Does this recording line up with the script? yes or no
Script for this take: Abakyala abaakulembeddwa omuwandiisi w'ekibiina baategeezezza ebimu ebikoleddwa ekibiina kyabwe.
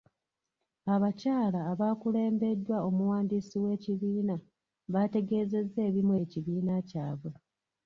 no